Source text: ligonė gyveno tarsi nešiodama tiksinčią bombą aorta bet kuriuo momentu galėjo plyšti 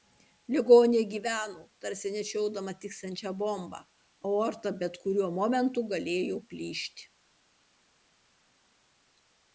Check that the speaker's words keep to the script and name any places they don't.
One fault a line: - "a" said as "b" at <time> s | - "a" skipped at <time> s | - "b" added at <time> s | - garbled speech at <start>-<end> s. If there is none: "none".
none